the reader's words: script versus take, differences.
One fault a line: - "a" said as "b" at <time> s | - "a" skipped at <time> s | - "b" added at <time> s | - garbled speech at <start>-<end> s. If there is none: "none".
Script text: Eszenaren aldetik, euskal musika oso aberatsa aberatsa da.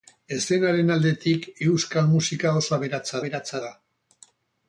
none